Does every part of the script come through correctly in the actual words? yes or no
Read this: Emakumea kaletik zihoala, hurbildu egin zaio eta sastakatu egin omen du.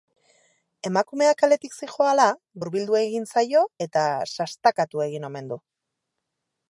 yes